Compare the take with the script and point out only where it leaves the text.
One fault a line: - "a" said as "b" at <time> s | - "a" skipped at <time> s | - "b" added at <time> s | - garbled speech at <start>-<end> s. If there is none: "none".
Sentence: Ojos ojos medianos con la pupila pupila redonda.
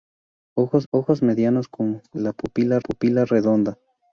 none